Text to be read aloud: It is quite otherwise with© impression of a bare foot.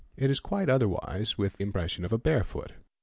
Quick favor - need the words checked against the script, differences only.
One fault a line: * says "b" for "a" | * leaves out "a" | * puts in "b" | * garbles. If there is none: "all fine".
all fine